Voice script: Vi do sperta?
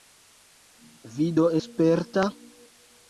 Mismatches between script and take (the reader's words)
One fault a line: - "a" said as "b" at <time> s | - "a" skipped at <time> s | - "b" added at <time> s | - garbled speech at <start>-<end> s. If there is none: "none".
none